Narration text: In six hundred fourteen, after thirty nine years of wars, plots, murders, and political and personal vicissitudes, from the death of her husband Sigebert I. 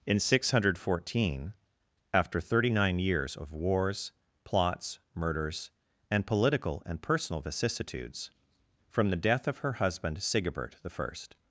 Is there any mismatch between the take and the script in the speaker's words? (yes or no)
no